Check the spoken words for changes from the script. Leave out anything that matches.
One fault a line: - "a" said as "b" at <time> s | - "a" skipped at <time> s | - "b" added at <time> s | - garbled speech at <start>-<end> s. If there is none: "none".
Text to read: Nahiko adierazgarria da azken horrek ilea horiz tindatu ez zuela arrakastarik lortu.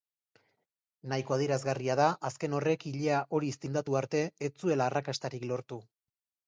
- "arte" added at 4.0 s